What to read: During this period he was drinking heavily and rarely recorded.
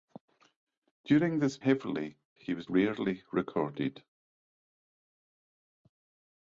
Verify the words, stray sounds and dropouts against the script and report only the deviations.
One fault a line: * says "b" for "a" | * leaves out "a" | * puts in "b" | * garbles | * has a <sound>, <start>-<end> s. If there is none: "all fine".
* says "heavily" for "period"
* leaves out "drinking heavily and"